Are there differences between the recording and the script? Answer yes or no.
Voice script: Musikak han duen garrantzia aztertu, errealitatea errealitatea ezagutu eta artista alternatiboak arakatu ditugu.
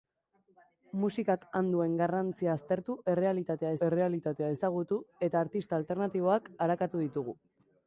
no